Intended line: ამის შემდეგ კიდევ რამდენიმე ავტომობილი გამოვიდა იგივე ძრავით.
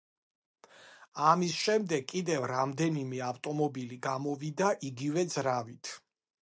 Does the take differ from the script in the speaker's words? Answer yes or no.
no